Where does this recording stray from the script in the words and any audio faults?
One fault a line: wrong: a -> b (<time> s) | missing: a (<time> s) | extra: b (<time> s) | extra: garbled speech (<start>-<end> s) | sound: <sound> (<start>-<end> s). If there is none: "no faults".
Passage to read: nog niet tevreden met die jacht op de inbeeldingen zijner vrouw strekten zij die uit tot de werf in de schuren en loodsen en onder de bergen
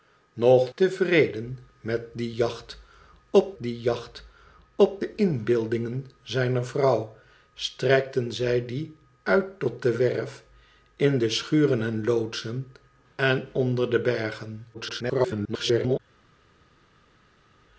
missing: niet (0.7 s)
extra: die jacht op (3.6 s)
extra: garbled speech (14.7-16.0 s)